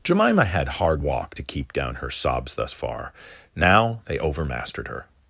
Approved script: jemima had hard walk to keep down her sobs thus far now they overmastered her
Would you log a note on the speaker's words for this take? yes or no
no